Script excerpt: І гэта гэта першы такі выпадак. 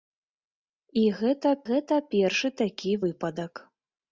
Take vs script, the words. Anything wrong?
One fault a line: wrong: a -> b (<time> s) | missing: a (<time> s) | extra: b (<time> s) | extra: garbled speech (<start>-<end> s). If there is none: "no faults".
no faults